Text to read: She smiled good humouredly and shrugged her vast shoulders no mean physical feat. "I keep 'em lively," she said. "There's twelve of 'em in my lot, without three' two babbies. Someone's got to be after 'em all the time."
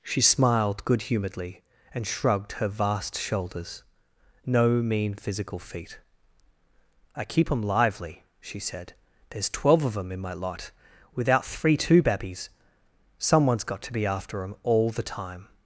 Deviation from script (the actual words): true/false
false